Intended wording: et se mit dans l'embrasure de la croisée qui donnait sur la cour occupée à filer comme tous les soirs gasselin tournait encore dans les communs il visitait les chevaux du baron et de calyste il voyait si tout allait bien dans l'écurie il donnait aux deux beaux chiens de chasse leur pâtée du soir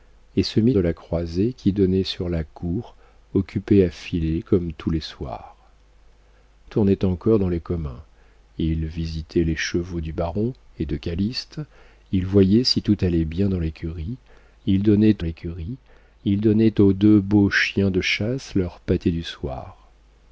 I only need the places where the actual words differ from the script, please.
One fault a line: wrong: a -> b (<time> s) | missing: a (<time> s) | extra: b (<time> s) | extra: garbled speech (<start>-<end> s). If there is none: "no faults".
missing: dans l'embrasure (0.7 s)
missing: gasselin (5.6 s)
extra: l'écurie il donnait (15.2 s)